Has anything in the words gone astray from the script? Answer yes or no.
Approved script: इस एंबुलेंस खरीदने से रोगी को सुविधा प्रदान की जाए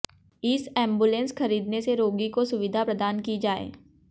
no